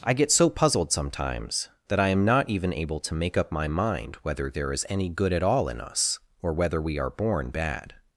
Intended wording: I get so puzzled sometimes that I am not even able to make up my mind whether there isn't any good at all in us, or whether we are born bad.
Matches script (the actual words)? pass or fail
fail